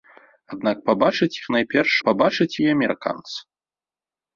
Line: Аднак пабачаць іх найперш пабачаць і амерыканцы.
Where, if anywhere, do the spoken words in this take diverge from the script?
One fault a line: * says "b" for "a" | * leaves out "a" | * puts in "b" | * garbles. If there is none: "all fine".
all fine